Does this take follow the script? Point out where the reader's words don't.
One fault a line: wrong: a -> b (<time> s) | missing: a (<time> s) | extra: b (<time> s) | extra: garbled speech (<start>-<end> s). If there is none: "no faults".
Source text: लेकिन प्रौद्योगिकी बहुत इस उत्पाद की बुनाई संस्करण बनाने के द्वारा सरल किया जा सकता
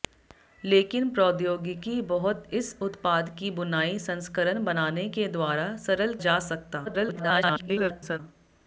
missing: किया (6.1 s)
extra: garbled speech (6.8-8.2 s)